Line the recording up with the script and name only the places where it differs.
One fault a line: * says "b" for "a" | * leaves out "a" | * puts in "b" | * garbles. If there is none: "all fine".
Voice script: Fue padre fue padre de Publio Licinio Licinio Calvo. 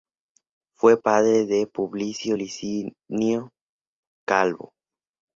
* leaves out "fue padre"
* leaves out "Licinio"